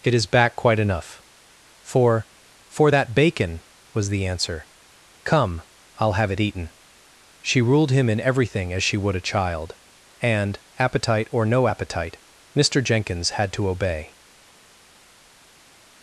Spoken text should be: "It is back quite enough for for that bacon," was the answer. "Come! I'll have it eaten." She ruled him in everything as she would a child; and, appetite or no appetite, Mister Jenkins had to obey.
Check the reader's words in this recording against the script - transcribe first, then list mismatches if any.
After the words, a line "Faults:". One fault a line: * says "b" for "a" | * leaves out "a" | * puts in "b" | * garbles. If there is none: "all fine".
"It is back quite enough for for that bacon," was the answer. "Come! I'll have it eaten." She ruled him in everything as she would a child; and, appetite or no appetite, Mister Jenkins had to obey.
Faults:
all fine